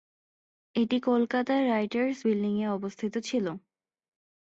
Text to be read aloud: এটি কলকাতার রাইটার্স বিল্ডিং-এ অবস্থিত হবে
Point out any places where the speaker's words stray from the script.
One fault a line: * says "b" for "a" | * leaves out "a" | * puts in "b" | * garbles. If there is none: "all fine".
* says "ছিল" for "হবে"